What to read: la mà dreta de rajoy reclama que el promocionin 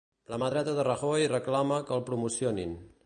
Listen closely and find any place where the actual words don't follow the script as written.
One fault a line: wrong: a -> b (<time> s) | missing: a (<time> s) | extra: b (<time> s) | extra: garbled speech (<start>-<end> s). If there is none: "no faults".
no faults